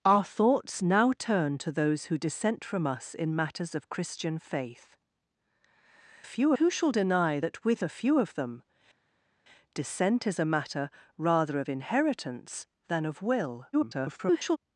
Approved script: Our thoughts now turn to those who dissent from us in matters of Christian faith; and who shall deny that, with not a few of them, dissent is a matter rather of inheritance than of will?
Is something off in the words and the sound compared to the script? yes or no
yes